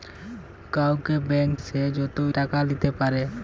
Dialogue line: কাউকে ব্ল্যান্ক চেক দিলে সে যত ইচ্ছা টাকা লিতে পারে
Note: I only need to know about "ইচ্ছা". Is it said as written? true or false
false